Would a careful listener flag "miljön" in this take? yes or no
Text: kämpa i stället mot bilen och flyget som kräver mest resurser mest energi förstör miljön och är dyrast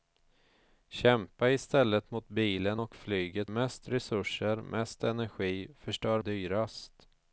yes